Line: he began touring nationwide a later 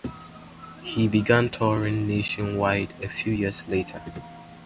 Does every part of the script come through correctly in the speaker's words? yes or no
no